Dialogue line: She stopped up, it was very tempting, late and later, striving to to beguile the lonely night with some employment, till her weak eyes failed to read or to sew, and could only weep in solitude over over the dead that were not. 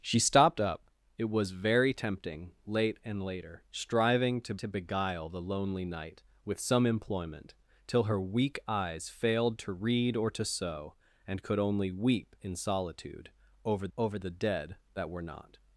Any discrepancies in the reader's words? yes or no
no